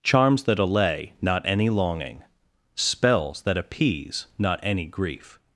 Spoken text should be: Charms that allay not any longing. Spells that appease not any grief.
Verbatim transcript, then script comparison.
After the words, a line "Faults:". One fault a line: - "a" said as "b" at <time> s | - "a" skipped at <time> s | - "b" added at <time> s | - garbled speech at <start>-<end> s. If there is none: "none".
Charms that allay not any longing. Spells that appease not any grief.
Faults:
none